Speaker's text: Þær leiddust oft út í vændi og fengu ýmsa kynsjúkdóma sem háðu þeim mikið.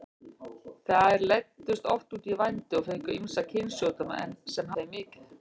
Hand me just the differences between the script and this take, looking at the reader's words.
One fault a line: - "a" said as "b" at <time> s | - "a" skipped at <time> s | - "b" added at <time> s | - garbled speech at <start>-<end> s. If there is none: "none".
- "háðu" skipped at 4.8 s